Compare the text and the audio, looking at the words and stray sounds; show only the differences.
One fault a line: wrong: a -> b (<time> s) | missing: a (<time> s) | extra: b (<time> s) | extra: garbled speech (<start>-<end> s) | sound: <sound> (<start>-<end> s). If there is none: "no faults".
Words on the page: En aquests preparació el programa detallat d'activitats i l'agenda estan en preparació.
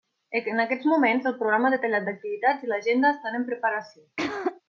wrong: preparació -> moments (0.9 s)
sound: throat clearing (4.2-4.6 s)